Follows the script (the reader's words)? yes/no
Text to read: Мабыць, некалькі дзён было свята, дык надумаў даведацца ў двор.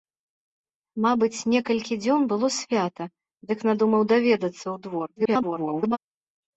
no